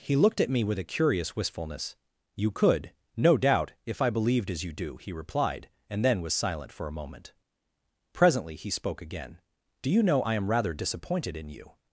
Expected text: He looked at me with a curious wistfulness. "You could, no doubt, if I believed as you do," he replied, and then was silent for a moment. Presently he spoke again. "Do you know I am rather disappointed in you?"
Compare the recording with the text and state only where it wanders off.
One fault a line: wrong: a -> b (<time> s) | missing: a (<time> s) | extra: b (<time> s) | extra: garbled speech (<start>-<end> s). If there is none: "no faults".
no faults